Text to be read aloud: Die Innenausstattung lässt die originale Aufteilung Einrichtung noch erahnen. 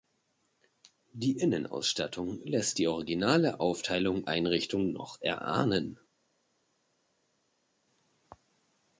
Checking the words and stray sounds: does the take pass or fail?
pass